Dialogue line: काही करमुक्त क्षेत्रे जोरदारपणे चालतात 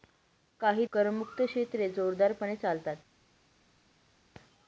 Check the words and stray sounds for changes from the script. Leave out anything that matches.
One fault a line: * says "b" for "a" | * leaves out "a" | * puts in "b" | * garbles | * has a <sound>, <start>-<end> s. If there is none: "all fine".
all fine